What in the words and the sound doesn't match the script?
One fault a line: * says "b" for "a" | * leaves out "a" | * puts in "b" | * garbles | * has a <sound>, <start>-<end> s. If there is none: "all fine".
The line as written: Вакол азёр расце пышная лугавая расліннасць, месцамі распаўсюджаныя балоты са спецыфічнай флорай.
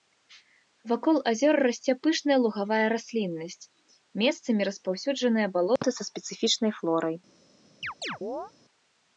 * has a dropout, 5.8-5.8 s
* has a chirp, 7.8-8.5 s